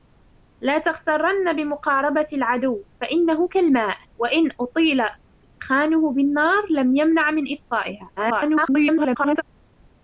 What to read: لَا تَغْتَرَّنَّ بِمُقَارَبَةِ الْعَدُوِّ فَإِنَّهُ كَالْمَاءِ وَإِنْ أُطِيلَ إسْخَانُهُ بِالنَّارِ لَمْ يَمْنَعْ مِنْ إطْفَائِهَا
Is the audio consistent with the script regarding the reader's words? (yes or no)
no